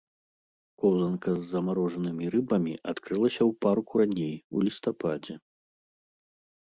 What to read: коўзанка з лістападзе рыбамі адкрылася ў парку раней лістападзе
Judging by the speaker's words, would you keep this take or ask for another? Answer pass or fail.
fail